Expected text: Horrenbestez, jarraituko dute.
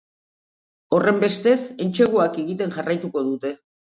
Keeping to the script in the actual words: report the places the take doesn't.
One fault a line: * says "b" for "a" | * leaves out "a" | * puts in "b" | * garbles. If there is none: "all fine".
* puts in "entseguak egiten"